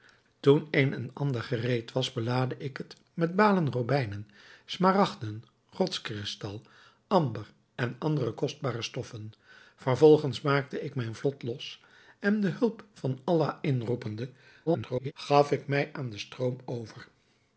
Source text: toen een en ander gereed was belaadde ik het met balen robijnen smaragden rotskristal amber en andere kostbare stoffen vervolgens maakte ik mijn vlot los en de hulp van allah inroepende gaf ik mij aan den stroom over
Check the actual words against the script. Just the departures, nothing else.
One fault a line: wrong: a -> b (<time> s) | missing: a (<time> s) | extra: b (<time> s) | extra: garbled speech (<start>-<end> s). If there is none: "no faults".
extra: garbled speech (14.7-15.1 s)